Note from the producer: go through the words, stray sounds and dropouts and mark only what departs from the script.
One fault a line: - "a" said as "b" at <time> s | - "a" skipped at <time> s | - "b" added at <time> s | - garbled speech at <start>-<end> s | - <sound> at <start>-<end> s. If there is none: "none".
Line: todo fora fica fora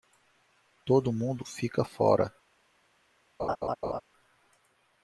- "fora" said as "mundo" at 1.1 s
- laugh at 3.4-4.0 s